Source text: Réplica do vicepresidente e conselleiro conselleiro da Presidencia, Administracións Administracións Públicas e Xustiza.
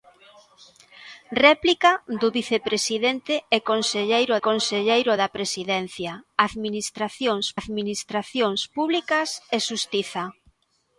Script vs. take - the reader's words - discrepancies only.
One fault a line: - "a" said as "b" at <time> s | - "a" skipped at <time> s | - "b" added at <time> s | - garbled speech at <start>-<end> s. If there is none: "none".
none